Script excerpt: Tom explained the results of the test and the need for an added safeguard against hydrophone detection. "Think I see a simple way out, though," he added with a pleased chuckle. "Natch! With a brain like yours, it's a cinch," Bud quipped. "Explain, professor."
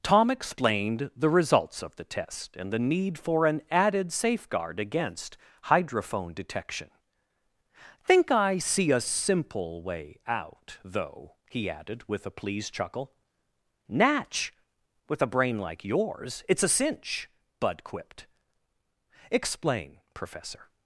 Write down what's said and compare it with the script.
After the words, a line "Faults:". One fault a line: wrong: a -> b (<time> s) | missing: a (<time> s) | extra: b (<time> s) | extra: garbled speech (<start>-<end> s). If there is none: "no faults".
Tom explained the results of the test and the need for an added safeguard against hydrophone detection. "Think I see a simple way out, though," he added with a pleased chuckle. "Natch! With a brain like yours, it's a cinch," Bud quipped. "Explain, professor."
Faults:
no faults